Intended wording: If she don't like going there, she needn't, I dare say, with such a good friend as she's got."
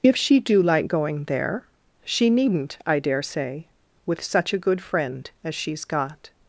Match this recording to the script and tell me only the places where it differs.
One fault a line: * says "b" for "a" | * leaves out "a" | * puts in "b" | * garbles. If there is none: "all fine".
* says "do" for "don't"